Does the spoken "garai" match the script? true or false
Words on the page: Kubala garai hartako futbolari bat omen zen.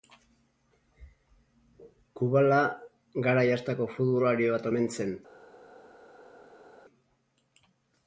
true